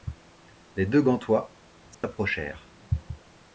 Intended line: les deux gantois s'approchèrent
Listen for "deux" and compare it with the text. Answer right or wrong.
right